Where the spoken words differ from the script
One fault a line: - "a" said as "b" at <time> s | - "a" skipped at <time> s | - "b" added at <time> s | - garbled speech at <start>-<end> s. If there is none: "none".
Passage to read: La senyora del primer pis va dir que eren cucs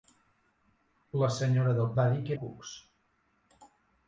- "primer pis" skipped at 1.9 s
- "eren" skipped at 2.4 s